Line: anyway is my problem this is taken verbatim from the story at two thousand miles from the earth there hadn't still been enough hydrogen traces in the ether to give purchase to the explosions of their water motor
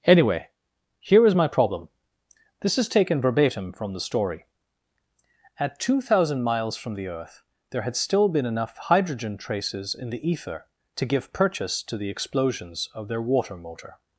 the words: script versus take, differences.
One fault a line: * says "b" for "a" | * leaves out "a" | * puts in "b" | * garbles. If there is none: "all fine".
* puts in "here"
* says "had" for "hadn't"